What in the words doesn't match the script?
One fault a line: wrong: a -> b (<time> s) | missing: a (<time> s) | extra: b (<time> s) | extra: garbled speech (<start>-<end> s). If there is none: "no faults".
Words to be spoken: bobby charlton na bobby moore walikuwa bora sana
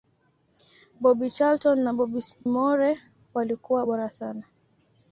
missing: na bobby (1.8 s)